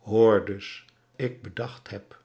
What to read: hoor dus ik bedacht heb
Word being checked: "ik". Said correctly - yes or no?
yes